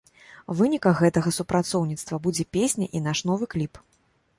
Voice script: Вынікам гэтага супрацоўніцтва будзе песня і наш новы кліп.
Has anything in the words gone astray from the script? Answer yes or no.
no